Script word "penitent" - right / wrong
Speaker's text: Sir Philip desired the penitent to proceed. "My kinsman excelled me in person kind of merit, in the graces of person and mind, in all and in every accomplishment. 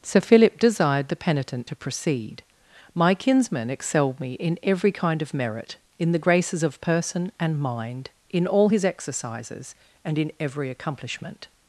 right